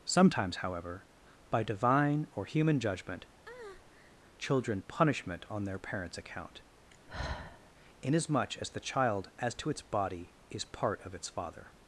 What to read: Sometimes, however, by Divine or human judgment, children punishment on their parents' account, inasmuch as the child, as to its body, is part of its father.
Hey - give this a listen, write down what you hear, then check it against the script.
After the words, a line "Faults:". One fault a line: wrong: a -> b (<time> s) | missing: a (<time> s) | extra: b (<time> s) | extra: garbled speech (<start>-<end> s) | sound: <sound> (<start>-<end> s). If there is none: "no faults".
Sometimes, however, by Divine or human judgment, children punishment on their parents' account, inasmuch as the child, as to its body, is part of its father.
Faults:
sound: breath (3.5-4.2 s)
sound: sigh (6.9-7.7 s)